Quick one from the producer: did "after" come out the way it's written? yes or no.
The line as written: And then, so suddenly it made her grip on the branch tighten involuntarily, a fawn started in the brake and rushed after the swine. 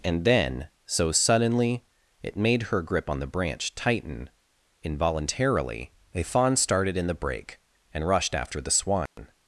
yes